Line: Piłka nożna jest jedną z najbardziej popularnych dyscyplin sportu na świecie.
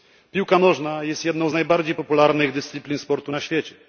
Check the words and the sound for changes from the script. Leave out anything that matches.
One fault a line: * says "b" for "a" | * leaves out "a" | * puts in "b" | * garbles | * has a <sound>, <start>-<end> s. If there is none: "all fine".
all fine